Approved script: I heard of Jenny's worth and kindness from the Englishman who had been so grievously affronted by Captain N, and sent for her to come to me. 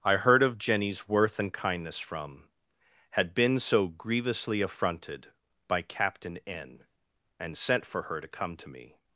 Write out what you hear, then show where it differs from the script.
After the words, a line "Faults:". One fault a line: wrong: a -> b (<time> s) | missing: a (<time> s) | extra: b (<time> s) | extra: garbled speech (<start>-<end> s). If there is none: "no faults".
I heard of Jenny's worth and kindness from had been so grievously affronted by Captain N, and sent for her to come to me.
Faults:
missing: the Englishman who (2.5 s)